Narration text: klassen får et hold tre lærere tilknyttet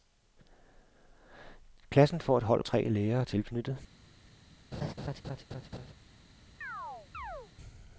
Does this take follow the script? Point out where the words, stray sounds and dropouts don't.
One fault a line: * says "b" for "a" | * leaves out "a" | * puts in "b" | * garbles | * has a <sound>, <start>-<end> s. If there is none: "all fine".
* has a laugh, 4.7-5.9 s
* has a chirp, 6.6-7.5 s